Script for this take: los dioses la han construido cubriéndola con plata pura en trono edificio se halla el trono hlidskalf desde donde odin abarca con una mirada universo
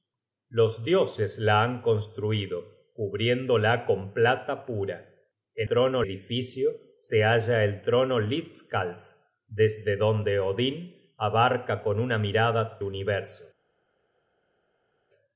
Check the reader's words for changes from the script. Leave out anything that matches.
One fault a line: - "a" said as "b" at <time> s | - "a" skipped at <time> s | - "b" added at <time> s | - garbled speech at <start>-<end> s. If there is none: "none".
none